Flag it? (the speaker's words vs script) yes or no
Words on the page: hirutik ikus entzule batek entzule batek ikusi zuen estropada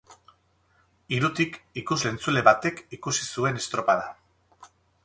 yes